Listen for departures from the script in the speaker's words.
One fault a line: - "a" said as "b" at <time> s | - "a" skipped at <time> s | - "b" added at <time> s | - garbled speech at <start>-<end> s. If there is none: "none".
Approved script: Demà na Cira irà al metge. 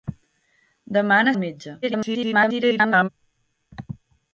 - "Cira irà" skipped at 1.3 s
- garbled speech at 1.8-3.1 s